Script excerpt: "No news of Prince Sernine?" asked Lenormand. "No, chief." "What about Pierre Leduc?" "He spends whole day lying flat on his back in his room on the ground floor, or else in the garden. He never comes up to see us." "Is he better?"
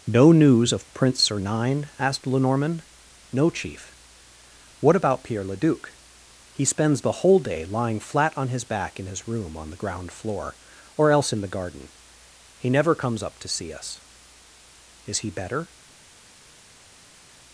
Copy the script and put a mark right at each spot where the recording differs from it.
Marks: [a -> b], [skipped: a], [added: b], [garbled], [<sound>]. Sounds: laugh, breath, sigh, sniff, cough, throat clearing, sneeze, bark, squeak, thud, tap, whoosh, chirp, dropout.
"No news of Prince Sernine?" asked Lenormand. "No, chief." "What about Pierre Leduc?" "He spends [added: the] whole day lying flat on his back in his room on the ground floor, or else in the garden. He never comes up to see us." "Is he better?"